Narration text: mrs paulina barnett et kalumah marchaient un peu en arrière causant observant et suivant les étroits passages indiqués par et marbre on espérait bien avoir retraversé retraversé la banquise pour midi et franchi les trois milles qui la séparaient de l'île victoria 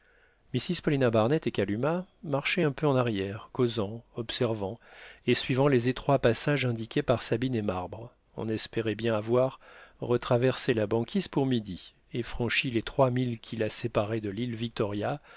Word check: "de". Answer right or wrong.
right